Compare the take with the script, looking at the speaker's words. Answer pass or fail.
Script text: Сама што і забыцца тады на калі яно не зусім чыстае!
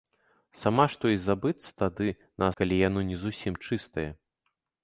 pass